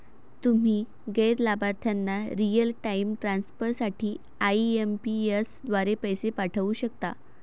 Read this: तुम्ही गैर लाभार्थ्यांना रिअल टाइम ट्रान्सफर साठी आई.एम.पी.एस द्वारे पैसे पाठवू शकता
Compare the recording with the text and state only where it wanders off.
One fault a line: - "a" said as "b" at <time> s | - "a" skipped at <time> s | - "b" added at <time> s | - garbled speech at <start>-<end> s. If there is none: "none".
none